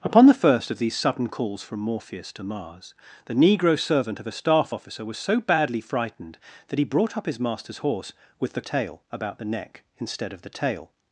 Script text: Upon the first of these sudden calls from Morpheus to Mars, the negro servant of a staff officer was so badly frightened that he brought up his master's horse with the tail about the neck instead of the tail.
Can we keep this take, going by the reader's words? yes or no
yes